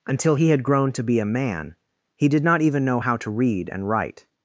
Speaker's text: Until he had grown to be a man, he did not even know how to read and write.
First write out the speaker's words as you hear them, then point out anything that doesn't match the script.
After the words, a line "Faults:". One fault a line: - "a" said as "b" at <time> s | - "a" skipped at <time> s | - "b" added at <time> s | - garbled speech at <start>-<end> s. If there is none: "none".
Until he had grown to be a man, he did not even know how to read and write.
Faults:
none